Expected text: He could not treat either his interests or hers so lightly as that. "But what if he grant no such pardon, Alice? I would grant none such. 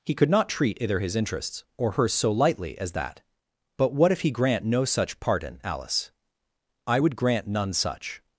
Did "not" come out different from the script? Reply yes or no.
no